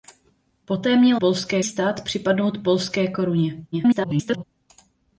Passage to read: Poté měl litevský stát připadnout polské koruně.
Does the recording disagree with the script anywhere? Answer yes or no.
yes